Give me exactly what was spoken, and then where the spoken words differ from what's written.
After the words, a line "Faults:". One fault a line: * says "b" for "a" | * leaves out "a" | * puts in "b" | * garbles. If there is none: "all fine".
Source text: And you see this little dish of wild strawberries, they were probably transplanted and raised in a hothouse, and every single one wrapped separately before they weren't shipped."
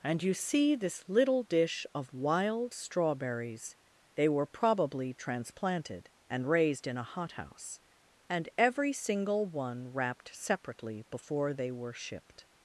And you see this little dish of wild strawberries, they were probably transplanted and raised in a hothouse, and every single one wrapped separately before they were shipped."
Faults:
* says "were" for "weren't"